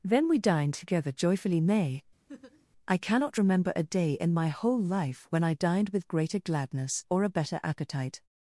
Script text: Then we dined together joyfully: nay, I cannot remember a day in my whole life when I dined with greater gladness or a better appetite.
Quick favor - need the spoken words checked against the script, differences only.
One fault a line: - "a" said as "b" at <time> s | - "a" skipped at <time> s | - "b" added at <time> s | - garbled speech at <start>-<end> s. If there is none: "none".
none